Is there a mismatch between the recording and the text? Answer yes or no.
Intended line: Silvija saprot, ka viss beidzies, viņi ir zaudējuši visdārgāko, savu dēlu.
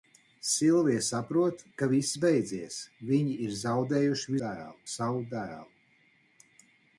yes